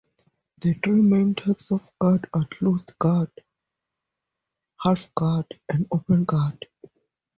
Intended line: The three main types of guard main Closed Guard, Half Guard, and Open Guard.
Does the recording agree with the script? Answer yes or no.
no